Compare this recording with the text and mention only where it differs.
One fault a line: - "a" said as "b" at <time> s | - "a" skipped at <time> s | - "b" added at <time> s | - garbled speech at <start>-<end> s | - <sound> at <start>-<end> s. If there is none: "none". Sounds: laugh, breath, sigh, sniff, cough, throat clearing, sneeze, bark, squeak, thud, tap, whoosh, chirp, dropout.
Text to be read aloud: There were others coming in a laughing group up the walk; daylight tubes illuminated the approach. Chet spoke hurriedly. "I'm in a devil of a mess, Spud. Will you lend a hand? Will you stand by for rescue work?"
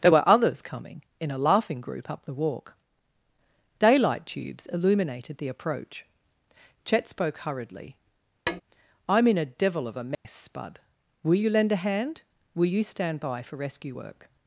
- tap at 8.5-8.6 s
- dropout at 10.1-10.3 s